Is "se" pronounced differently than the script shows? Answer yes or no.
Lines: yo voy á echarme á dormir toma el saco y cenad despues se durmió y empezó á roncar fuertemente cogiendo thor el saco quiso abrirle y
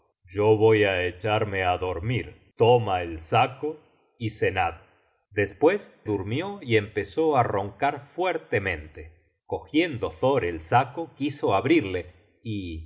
yes